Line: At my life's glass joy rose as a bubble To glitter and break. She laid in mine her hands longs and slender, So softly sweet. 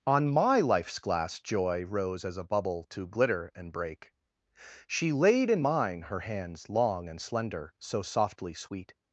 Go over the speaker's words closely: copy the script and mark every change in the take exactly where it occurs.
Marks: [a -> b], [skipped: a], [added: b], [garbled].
[At -> On] my life's glass joy rose as a bubble To glitter and break. She laid in mine her hands [longs -> long] and slender, So softly sweet.